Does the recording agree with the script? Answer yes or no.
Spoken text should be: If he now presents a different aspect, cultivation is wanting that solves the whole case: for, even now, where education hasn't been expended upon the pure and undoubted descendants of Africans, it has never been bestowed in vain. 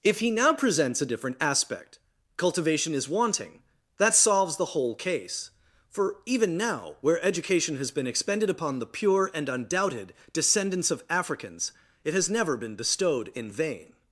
no